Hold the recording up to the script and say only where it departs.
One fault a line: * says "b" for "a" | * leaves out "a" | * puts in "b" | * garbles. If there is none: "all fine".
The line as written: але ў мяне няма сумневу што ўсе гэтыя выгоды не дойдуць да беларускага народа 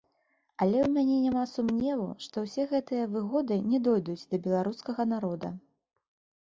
all fine